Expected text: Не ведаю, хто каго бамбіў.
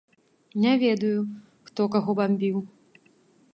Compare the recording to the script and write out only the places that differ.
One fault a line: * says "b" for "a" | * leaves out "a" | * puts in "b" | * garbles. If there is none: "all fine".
all fine